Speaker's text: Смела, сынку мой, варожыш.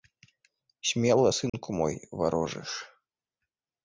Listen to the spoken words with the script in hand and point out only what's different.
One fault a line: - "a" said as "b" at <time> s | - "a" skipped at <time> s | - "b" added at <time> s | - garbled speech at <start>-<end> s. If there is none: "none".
none